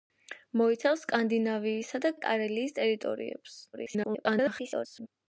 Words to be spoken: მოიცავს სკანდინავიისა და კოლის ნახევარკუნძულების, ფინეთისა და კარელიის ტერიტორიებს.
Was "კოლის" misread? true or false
true